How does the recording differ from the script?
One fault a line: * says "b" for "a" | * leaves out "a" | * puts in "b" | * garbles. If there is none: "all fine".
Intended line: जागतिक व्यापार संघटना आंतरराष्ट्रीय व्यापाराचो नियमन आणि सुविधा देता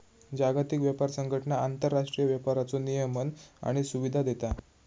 all fine